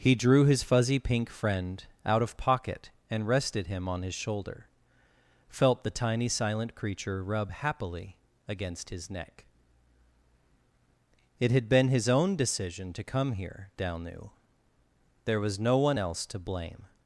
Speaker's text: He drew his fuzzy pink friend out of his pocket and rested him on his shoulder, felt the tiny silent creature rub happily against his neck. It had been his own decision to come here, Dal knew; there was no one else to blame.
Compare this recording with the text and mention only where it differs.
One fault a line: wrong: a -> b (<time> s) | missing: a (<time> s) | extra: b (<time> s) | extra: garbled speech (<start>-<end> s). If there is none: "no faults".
missing: his (2.4 s)